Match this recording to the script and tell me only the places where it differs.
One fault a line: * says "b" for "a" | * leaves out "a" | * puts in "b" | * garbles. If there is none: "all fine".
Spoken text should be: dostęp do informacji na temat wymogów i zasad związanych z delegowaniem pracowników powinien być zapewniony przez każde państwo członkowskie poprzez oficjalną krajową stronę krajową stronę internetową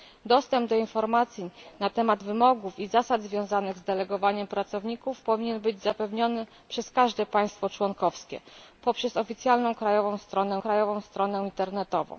all fine